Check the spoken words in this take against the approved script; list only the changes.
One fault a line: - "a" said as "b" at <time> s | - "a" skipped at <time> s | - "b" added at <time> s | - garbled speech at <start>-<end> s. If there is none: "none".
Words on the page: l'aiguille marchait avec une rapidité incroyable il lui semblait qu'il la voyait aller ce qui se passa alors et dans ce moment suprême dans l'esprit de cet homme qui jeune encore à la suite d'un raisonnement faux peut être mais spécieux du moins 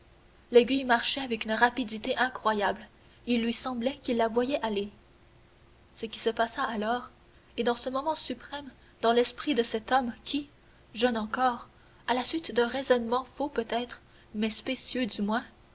none